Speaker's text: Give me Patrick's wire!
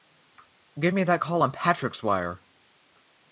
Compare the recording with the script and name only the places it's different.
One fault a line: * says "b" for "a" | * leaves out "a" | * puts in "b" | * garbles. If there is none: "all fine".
* puts in "that call on"